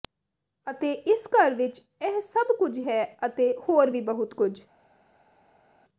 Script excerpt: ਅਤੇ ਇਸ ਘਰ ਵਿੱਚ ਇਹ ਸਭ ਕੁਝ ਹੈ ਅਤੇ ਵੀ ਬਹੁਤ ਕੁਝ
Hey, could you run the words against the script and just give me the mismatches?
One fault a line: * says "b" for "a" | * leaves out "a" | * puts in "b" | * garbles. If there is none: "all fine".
* puts in "ਹੋਰ"